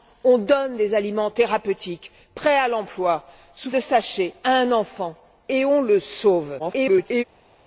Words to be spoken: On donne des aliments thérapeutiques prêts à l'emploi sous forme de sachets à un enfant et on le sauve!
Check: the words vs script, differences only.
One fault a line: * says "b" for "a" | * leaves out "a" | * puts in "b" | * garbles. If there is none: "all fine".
* leaves out "forme"
* garbles